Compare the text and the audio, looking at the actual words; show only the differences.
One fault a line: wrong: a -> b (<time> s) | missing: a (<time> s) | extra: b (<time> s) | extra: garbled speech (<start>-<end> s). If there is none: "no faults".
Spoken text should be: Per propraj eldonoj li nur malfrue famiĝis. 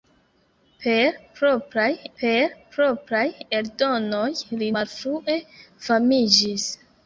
extra: per propraj (2.2 s)
missing: nur (4.7 s)